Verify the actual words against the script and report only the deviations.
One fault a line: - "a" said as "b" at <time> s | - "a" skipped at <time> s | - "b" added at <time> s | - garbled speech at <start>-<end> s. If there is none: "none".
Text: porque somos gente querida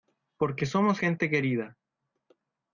none